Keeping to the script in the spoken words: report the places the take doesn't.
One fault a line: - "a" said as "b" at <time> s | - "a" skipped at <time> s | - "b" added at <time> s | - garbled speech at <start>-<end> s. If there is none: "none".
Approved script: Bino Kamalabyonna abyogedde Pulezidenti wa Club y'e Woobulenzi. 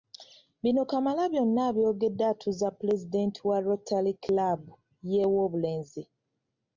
- "atuuza" added at 2.3 s
- "Rotary" added at 3.7 s